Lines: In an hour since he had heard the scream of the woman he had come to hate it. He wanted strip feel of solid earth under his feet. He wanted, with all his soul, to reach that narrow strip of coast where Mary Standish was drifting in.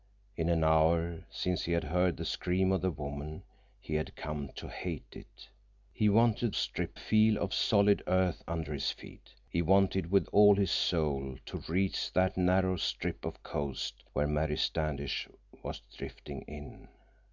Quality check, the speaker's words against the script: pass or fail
pass